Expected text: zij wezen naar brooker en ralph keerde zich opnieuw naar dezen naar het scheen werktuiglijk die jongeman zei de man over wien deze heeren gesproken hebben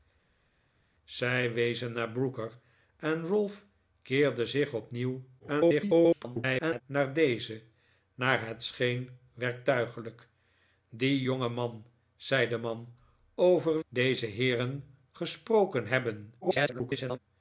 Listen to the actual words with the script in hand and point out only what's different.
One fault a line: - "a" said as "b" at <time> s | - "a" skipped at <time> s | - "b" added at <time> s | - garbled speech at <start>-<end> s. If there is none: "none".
- garbled speech at 5.4-6.8 s
- "wien" skipped at 13.8 s
- garbled speech at 16.4-17.2 s